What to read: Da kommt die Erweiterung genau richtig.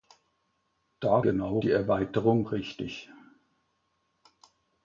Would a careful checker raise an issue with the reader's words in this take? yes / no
yes